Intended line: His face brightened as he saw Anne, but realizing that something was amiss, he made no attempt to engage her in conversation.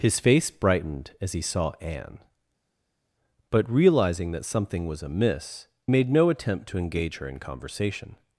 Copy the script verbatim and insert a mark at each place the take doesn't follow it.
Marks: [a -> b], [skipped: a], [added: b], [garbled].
His face brightened as he saw Anne, but realizing that something was amiss, [skipped: he] made no attempt to engage her in conversation.